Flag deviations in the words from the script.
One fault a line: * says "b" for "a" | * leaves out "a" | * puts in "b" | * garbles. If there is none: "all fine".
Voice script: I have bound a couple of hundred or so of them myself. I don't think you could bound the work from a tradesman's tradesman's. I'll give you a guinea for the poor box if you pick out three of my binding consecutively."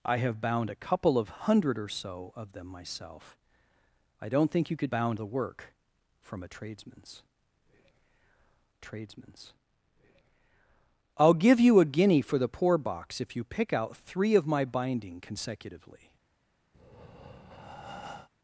all fine